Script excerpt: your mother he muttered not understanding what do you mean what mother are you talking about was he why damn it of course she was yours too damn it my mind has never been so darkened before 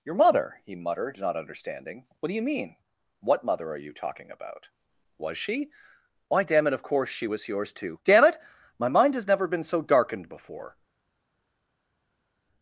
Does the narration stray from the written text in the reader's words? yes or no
yes